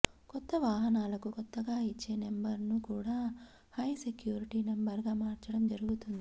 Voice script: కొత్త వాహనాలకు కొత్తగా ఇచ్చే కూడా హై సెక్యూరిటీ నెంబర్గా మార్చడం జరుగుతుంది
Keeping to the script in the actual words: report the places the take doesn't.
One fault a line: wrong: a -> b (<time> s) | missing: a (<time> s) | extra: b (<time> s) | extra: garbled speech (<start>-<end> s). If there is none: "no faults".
extra: నెంబర్ను (2.2 s)